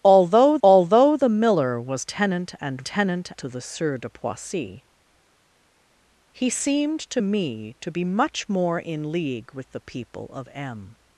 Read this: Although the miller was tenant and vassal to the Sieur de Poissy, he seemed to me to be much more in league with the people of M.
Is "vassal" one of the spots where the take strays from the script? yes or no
yes